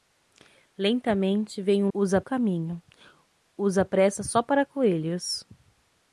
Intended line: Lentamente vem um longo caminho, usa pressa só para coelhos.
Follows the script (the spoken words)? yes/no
no